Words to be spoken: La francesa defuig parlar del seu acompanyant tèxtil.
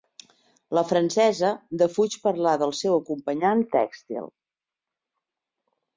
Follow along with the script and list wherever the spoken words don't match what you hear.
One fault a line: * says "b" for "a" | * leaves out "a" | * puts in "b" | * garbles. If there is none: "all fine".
all fine